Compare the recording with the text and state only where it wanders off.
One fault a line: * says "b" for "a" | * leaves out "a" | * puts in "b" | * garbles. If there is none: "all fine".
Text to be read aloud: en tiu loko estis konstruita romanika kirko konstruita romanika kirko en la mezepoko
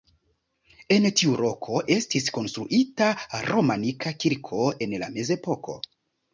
* leaves out "konstruita romanika kirko"